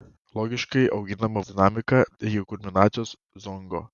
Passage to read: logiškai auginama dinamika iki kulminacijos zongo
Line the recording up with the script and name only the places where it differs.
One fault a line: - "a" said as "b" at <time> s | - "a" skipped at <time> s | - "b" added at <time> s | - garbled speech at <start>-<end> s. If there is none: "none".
none